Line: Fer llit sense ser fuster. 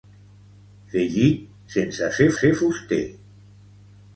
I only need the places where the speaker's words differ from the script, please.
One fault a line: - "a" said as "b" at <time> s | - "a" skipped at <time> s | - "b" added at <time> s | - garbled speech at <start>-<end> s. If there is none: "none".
- "ser" added at 2.4 s